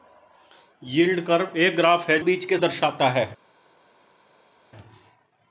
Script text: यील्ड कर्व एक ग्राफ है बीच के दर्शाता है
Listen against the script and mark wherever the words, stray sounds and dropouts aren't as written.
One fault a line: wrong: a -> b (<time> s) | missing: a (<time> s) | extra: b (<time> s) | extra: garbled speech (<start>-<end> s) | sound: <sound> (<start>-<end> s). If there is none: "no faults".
no faults